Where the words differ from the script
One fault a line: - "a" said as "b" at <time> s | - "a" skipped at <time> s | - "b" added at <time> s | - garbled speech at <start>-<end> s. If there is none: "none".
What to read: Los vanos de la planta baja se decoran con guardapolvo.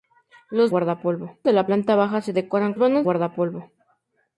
- "vanos" said as "guardapolvo" at 0.7 s
- "con" said as "vanos" at 2.8 s